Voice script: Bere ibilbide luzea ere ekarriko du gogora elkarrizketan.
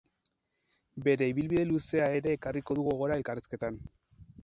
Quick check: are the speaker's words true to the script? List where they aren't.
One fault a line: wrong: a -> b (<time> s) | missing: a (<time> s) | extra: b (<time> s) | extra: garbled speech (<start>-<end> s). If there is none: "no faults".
no faults